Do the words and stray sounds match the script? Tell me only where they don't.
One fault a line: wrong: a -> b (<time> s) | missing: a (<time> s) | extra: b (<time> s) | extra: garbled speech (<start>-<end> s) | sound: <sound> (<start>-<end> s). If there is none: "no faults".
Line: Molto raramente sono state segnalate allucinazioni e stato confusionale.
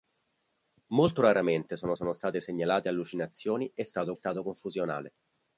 extra: sono (1.9 s)
extra: stato (4.1 s)